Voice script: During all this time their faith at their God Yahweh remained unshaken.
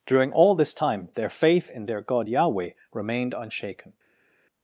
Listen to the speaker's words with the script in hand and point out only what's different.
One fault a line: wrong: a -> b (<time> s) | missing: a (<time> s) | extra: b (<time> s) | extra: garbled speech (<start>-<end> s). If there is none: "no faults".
wrong: at -> in (1.7 s)